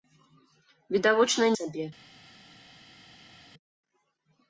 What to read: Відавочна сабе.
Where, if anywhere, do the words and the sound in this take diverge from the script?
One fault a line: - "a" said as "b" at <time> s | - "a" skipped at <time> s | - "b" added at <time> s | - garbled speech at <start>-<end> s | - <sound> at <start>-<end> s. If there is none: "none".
none